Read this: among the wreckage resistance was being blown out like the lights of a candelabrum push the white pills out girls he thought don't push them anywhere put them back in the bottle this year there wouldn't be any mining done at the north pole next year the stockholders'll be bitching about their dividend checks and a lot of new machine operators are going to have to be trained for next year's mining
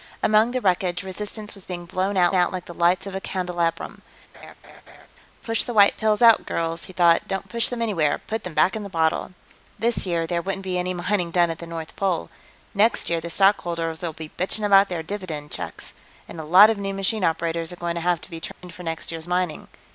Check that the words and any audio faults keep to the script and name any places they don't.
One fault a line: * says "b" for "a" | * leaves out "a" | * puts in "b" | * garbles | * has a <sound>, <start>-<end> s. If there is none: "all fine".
* puts in "out"
* has a laugh, 4.3-5.1 s
* has a dropout, 18.5-18.6 s